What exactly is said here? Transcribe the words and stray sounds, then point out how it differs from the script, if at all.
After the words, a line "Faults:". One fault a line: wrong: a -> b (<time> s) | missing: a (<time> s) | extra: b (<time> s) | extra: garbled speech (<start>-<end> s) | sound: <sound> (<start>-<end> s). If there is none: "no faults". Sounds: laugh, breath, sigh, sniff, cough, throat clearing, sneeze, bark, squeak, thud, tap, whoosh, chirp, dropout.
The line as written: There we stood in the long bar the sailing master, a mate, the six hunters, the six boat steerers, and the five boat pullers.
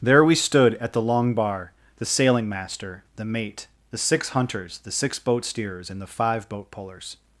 There we stood at the long bar the sailing master, the mate, the six hunters, the six boat steerers, and the five boat pullers.
Faults:
wrong: in -> at (0.8 s)
wrong: a -> the (3.1 s)